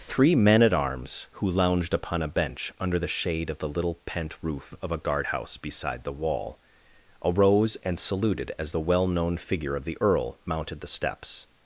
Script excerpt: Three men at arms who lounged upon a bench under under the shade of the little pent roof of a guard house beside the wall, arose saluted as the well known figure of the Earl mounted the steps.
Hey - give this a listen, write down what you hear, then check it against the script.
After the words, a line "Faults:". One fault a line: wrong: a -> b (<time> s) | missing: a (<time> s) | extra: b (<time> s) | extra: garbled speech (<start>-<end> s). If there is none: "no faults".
Three men at arms who lounged upon a bench under the shade of the little pent roof of a guard house beside the wall, arose and saluted as the well known figure of the Earl mounted the steps.
Faults:
missing: under (3.0 s)
extra: and (7.8 s)